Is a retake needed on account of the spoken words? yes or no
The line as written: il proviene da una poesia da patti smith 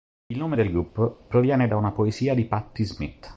yes